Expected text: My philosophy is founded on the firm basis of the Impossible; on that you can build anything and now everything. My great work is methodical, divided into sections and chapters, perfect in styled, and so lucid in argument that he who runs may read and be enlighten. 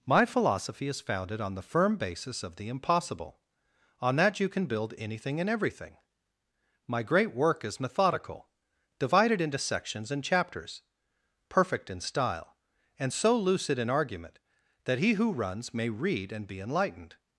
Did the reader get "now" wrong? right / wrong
wrong